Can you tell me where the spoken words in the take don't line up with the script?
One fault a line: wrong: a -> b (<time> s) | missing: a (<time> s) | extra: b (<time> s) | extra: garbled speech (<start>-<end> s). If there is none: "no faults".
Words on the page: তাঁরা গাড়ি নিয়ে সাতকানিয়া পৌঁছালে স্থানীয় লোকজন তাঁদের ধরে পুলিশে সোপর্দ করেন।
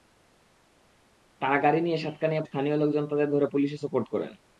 missing: পৌঁছালে (2.4 s)